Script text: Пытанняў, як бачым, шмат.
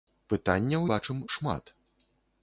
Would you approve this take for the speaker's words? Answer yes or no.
no